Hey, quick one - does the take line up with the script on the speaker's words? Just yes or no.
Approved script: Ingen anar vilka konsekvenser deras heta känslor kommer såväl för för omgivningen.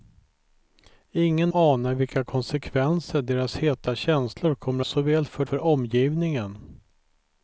yes